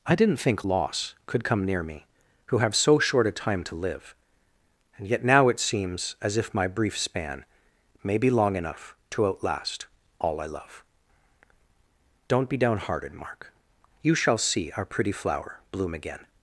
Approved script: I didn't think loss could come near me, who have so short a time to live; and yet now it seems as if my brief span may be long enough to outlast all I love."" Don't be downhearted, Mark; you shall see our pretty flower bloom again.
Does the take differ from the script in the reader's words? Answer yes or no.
no